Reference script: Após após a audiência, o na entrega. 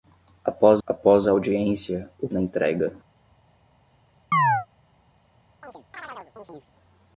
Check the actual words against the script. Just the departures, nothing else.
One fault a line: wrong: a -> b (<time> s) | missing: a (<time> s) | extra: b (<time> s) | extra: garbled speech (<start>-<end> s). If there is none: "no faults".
no faults